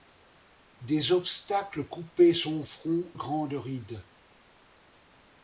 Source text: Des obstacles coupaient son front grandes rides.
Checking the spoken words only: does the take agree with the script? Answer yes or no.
yes